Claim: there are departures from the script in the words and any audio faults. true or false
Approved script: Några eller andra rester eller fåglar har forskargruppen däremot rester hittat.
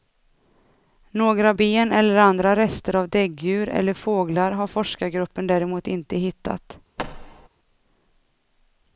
true